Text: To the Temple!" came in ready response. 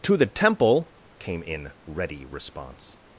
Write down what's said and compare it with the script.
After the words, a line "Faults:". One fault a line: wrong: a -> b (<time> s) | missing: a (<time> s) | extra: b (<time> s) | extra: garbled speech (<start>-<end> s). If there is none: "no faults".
To the Temple!" came in ready response.
Faults:
no faults